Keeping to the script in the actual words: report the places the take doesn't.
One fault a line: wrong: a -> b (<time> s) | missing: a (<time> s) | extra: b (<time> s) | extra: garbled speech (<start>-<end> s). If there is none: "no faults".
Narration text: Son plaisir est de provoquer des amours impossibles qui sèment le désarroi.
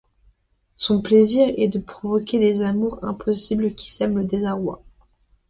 no faults